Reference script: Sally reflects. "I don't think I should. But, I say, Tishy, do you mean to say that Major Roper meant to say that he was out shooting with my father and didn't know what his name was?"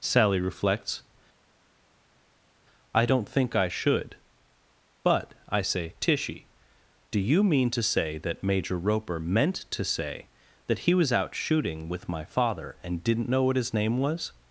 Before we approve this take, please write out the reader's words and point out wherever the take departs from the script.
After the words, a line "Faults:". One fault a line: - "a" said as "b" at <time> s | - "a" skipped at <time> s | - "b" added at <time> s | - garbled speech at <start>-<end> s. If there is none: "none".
Sally reflects. "I don't think I should. But, I say, Tishy, do you mean to say that Major Roper meant to say that he was out shooting with my father and didn't know what his name was?"
Faults:
none